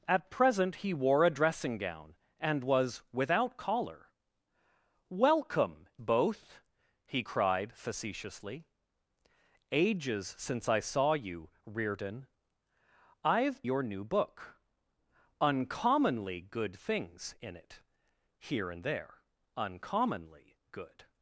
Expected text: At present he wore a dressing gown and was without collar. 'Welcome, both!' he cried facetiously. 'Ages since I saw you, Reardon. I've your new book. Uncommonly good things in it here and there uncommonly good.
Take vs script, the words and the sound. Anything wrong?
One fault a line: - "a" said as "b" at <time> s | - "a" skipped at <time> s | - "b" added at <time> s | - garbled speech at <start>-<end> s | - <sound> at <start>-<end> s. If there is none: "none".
none